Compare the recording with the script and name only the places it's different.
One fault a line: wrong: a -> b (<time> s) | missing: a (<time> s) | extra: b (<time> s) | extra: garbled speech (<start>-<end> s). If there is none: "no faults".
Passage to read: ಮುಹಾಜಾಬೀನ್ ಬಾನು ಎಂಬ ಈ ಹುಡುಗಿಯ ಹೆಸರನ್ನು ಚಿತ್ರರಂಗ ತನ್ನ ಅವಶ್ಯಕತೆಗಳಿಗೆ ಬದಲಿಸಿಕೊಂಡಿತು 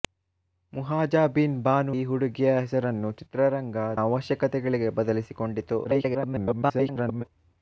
missing: ಎಂಬ (1.9 s)
missing: ತನ್ನ (3.8 s)
extra: garbled speech (5.8-7.2 s)